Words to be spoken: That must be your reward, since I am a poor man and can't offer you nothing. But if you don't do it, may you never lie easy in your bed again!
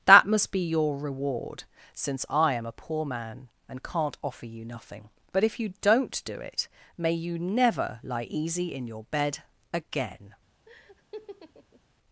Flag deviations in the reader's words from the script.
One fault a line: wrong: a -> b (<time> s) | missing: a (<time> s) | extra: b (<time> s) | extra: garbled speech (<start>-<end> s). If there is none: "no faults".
no faults